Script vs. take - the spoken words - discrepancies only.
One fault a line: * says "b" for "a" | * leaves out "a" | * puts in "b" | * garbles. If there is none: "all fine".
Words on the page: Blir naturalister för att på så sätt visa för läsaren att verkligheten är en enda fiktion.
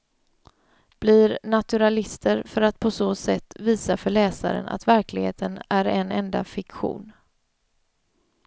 all fine